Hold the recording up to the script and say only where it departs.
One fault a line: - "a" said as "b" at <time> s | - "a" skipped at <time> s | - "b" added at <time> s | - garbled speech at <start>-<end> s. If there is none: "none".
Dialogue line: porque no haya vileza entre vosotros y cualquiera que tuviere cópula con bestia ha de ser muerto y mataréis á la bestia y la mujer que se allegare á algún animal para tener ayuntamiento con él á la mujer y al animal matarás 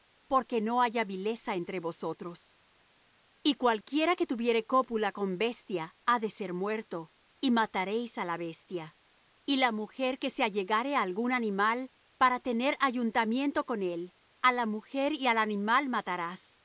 none